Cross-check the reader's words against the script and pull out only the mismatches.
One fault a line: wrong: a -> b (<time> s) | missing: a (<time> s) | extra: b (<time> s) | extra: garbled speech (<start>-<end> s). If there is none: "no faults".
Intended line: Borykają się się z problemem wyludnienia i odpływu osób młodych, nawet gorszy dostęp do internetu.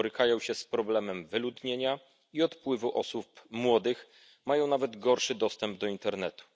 missing: się (0.6 s)
extra: mają (4.4 s)